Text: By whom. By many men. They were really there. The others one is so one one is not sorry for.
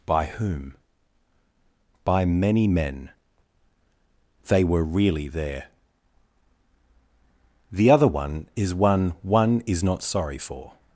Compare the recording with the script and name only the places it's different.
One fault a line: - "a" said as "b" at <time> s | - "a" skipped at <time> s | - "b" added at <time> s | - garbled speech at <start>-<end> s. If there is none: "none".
- "others" said as "other" at 7.9 s
- "so" skipped at 8.7 s